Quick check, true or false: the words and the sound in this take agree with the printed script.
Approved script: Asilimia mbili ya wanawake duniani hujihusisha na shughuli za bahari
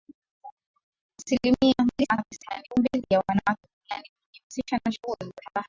false